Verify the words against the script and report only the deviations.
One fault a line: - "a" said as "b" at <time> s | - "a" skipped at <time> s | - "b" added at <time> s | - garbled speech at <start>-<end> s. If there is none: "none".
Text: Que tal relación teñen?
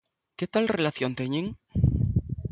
none